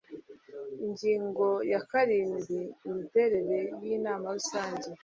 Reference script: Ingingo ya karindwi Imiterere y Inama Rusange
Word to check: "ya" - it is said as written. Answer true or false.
true